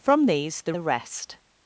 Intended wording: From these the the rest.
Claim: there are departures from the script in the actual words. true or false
false